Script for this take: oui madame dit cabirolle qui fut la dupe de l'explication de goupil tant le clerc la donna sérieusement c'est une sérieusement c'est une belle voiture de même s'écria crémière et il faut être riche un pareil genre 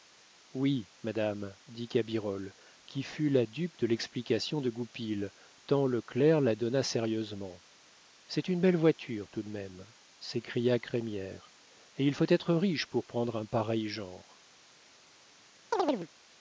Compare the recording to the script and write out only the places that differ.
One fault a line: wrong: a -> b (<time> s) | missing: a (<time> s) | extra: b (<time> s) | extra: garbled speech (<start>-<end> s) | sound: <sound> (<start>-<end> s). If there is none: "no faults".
missing: sérieusement c'est une (8.6 s)
extra: tout (9.3 s)
extra: pour prendre (12.9 s)
sound: chirp (15.7-16.1 s)